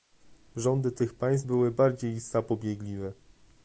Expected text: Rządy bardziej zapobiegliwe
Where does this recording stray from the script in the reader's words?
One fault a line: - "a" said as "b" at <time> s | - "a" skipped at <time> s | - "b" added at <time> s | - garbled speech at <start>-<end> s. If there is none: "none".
- "tych państw były" added at 0.9 s